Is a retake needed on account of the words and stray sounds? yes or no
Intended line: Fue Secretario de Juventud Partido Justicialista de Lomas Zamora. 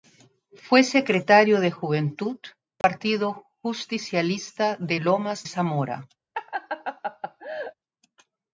yes